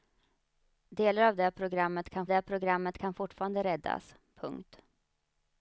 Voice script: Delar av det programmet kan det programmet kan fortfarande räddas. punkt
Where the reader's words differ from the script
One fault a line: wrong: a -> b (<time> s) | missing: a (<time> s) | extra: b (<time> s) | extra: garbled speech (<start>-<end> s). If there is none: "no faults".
no faults